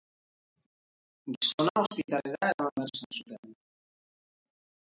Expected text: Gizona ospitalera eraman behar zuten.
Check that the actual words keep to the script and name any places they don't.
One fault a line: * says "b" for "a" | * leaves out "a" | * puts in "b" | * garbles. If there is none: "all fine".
* puts in "izan"